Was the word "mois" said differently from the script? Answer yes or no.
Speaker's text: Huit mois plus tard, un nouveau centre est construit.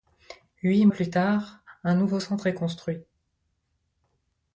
yes